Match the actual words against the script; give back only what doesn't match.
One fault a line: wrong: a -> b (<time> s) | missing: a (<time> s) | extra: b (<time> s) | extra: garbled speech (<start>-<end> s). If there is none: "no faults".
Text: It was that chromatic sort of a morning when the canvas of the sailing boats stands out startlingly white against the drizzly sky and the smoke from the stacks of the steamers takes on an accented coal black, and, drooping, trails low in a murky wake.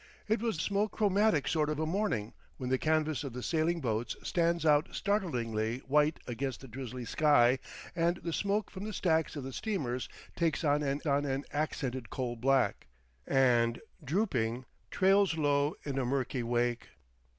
wrong: that -> smoke (0.6 s)
extra: on an (11.1 s)